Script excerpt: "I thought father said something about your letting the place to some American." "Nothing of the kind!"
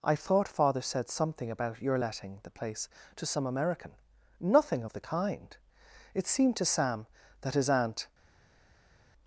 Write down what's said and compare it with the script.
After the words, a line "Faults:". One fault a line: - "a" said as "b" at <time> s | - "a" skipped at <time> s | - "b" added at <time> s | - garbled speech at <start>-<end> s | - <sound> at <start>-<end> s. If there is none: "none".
"I thought father said something about your letting the place to some American." "Nothing of the kind!" It seemed to Sam that his aunt
Faults:
- "It seemed to Sam that his aunt" added at 6.1 s